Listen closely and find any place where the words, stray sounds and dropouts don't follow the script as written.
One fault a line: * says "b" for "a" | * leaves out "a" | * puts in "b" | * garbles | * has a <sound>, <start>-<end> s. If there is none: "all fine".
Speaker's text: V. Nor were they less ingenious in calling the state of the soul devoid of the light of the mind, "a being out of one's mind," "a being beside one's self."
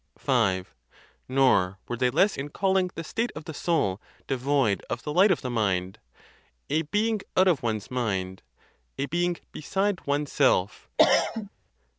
* leaves out "ingenious"
* has a cough, 11.0-11.5 s